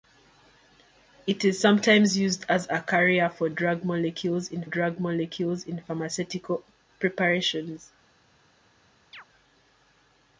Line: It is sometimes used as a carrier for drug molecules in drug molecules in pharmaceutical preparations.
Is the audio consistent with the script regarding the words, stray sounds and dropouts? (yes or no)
no